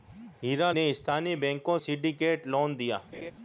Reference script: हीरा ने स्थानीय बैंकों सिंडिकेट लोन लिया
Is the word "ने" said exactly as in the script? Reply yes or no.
yes